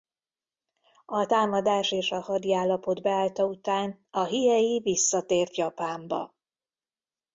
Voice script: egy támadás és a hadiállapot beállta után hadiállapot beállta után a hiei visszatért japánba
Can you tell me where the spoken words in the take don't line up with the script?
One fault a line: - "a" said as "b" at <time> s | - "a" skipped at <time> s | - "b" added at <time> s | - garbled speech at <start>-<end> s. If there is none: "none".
- "egy" said as "a" at 1.1 s
- "hadiállapot beállta után" skipped at 4.1 s